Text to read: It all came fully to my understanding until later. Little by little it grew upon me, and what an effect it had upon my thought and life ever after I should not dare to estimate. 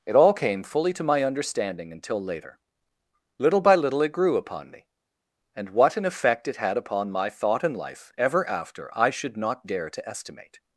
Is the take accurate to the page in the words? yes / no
yes